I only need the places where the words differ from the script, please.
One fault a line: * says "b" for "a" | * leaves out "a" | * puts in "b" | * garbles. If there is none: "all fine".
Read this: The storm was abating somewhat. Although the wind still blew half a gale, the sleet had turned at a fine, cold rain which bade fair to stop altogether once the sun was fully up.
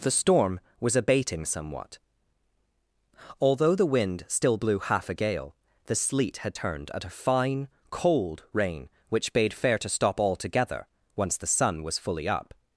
all fine